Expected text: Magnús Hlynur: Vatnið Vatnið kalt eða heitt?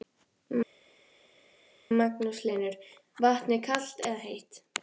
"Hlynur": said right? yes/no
yes